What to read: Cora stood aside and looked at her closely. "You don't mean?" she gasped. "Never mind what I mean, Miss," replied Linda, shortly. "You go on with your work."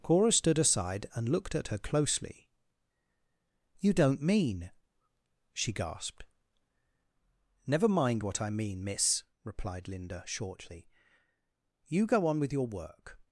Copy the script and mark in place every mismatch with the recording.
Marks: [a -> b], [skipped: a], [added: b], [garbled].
Cora stood aside and looked at her closely. "You don't mean?" she gasped. "Never mind what I mean, Miss," replied Linda, shortly. "You go on with your work."